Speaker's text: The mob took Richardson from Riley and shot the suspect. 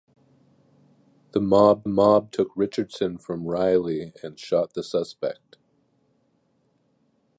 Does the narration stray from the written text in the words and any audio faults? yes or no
yes